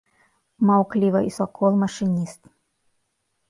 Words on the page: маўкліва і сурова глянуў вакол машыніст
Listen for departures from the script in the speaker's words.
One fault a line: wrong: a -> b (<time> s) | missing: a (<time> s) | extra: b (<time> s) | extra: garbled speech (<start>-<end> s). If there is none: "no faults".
missing: сурова глянуў (1.3 s)